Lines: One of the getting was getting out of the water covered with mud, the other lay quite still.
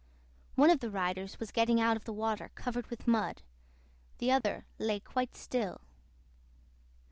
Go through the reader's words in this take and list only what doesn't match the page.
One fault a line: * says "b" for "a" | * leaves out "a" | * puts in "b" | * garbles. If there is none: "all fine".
* says "riders" for "getting"